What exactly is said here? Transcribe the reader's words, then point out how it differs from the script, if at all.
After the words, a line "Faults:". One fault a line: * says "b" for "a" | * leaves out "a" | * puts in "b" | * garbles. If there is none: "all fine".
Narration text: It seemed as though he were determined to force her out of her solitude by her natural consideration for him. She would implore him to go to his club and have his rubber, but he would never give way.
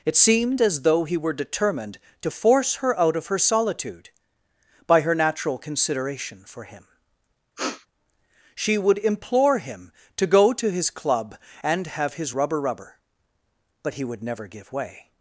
It seemed as though he were determined to force her out of her solitude by her natural consideration for him. She would implore him to go to his club and have his rubber rubber, but he would never give way.
Faults:
* puts in "rubber"